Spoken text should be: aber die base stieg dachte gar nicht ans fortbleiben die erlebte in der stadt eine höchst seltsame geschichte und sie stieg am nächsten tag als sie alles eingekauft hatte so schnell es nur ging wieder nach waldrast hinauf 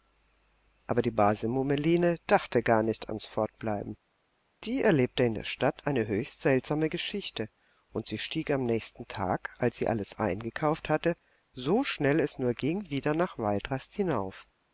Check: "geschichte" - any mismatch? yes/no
no